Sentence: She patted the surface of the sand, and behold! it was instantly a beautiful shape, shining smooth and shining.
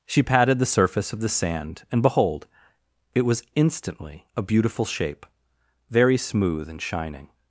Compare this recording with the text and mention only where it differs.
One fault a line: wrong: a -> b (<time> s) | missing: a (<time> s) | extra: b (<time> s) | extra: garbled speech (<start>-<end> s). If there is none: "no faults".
wrong: shining -> very (5.9 s)